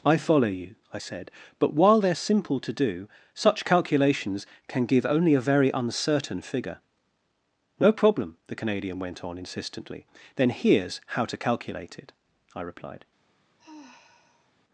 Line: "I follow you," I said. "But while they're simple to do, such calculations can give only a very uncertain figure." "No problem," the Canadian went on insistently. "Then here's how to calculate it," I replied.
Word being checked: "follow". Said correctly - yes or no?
yes